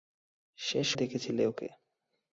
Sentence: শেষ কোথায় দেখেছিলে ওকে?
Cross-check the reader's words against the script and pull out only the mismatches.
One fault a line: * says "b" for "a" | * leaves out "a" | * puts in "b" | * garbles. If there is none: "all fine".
* leaves out "কোথায়"